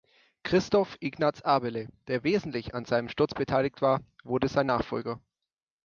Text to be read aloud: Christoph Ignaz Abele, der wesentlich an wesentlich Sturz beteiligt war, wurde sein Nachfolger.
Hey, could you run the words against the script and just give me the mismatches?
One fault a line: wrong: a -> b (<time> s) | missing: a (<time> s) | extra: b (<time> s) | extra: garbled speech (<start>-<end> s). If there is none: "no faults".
wrong: wesentlich -> seinem (2.8 s)